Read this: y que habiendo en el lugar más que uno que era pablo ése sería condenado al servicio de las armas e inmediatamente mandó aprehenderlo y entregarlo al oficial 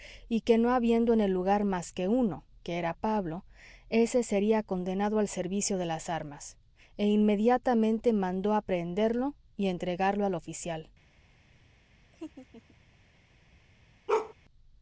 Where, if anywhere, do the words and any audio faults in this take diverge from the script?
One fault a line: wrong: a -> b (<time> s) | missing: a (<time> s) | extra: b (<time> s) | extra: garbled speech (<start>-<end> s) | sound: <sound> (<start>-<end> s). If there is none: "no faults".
extra: no (0.6 s)
sound: laugh (12.1-12.8 s)
sound: bark (14.1-14.3 s)